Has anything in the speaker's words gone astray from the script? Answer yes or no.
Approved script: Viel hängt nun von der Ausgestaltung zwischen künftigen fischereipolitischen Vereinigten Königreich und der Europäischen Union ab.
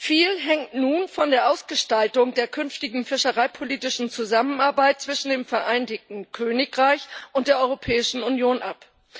yes